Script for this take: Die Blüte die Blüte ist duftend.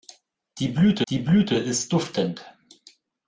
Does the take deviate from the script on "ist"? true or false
false